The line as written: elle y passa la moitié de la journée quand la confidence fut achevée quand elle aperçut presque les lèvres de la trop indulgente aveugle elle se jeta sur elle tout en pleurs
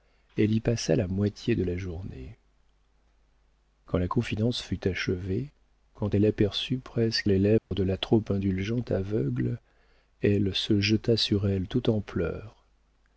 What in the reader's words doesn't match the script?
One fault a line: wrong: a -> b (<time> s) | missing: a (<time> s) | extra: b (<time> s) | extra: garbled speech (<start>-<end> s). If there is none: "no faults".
no faults